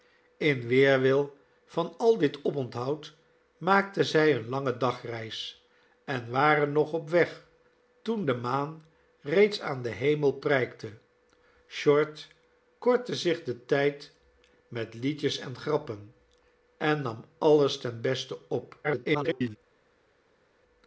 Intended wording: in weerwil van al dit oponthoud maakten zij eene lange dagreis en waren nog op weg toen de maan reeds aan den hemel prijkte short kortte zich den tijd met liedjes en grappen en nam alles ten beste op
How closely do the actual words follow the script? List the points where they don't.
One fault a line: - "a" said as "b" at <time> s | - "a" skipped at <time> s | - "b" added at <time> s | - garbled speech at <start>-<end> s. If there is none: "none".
- garbled speech at 18.8-19.6 s